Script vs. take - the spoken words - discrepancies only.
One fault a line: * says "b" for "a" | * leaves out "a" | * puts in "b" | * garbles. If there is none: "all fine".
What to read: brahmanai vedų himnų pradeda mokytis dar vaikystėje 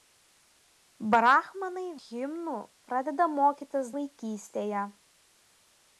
* leaves out "vedų"
* leaves out "dar"